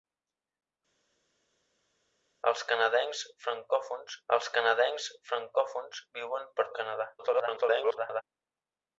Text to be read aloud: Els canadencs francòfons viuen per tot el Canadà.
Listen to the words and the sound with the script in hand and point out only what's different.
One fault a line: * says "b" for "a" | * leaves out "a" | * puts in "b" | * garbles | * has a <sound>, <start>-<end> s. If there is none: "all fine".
* puts in "els canadencs francòfons"
* leaves out "tot"
* garbles